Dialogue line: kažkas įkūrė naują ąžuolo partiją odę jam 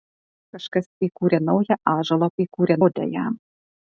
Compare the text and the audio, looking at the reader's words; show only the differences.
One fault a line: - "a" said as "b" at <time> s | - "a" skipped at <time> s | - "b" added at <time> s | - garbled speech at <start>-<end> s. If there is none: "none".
- "partiją" said as "įkūrė" at 2.4 s